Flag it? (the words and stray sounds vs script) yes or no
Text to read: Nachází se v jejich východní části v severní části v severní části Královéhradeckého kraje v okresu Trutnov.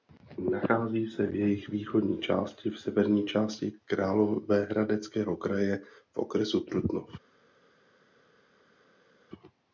yes